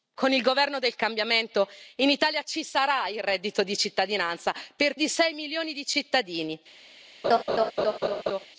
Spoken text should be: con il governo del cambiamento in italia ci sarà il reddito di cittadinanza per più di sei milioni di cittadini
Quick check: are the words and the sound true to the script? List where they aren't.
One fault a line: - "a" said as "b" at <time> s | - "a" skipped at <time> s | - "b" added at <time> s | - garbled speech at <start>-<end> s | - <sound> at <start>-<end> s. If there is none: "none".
- "più" skipped at 5.0 s
- laugh at 7.2-8.5 s